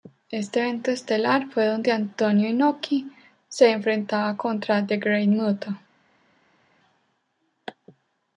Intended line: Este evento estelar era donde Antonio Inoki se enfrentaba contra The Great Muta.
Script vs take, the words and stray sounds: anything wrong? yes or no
yes